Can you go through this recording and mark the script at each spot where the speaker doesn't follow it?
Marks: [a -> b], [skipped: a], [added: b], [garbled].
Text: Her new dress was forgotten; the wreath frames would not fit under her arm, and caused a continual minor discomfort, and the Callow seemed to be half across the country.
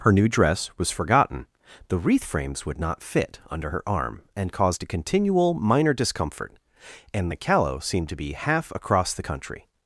Her new dress was forgotten; the wreath frames would not fit under her arm, and caused a continual minor discomfort, and the Callow seemed to be half across the country.